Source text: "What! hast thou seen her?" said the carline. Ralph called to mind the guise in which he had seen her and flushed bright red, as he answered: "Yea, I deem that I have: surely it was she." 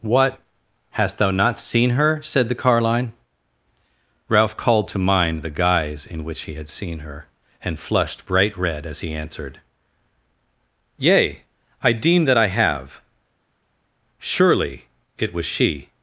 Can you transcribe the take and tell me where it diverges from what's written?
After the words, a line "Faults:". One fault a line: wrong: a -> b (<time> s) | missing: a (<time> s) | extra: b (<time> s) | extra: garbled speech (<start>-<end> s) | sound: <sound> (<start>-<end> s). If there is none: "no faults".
"What! hast thou not seen her?" said the carline. Ralph called to mind the guise in which he had seen her and flushed bright red, as he answered: "Yea, I deem that I have: surely it was she."
Faults:
extra: not (1.3 s)